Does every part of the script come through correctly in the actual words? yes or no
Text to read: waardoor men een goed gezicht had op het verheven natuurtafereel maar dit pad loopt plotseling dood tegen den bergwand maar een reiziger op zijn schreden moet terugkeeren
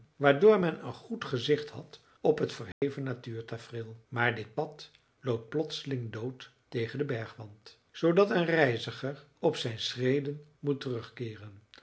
no